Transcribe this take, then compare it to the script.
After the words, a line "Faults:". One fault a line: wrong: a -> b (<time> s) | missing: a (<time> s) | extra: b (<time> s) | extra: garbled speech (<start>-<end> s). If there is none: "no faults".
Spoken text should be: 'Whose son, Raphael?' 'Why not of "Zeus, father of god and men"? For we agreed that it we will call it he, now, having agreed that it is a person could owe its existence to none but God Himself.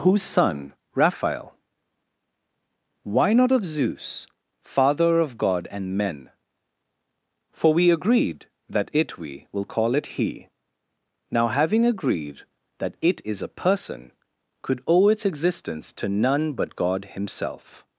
'Whose son, Raphael?' 'Why not of "Zeus, father of god and men"? For we agreed that it we will call it he, now, having agreed that it is a person could owe its existence to none but God Himself.
Faults:
no faults